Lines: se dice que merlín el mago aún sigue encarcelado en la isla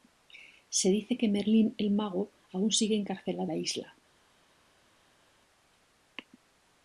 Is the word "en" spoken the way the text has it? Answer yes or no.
no